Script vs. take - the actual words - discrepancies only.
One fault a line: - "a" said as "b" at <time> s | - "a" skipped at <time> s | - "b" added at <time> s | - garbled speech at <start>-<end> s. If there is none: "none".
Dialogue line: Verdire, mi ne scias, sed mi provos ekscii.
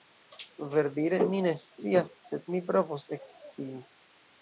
none